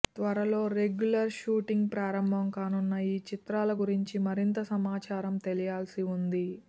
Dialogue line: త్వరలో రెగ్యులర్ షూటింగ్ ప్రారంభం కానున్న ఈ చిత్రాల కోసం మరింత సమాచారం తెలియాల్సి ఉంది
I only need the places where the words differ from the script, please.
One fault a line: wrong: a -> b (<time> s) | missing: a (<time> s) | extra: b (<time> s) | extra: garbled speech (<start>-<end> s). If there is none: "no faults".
wrong: కోసం -> గురించి (3.8 s)